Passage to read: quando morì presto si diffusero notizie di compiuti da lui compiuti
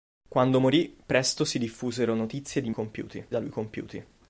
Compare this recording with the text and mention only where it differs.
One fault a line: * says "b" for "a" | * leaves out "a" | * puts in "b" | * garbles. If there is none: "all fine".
all fine